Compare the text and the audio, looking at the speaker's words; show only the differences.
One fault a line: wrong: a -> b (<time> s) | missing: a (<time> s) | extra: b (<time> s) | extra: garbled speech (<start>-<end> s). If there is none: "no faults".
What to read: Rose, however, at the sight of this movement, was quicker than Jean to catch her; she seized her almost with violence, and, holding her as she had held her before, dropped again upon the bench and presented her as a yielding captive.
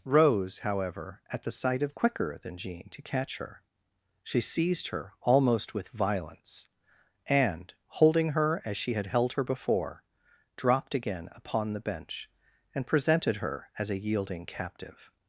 missing: this movement was (1.9 s)